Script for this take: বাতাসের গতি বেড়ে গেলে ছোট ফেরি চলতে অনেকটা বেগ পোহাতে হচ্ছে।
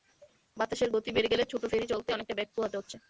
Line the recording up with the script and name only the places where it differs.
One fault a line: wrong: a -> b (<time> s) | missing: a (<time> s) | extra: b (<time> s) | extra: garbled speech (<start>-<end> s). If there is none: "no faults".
no faults